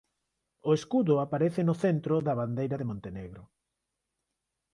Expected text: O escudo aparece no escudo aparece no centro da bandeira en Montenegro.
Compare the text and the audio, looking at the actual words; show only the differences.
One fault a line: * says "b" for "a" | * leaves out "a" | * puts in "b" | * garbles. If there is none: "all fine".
* leaves out "escudo aparece no"
* says "de" for "en"